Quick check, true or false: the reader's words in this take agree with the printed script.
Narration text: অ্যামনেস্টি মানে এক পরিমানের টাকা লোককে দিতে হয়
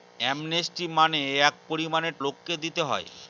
false